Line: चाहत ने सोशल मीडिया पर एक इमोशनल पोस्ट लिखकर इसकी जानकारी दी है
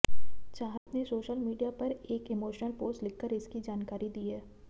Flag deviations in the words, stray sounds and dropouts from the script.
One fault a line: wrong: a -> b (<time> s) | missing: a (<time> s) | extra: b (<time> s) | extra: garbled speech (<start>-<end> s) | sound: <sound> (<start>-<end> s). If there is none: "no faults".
sound: dropout (0.8-0.9 s)